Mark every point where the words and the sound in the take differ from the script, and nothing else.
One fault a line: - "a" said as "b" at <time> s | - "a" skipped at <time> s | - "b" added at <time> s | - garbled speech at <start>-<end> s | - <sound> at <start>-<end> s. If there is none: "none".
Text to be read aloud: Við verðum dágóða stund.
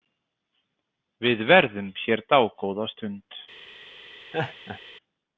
- "hér" added at 2.0 s
- laugh at 4.3-4.8 s